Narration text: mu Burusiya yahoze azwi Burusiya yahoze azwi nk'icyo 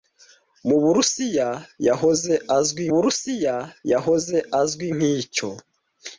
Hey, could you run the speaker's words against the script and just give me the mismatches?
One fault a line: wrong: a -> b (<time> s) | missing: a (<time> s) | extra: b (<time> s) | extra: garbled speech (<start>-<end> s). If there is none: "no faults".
no faults